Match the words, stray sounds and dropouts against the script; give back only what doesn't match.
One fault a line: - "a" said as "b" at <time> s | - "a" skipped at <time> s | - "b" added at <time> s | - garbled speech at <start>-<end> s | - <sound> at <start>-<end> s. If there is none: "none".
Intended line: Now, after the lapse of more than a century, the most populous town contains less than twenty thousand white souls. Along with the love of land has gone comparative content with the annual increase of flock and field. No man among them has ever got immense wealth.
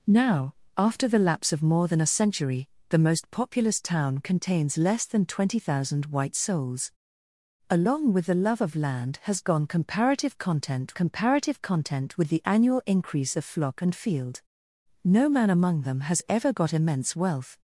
- "comparative content" added at 10.9 s